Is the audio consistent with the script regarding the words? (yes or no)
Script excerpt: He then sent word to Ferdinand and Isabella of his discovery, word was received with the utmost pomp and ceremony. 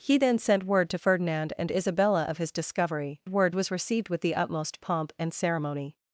yes